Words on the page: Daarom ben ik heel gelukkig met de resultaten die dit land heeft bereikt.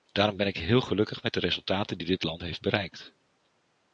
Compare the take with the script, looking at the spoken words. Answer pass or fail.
pass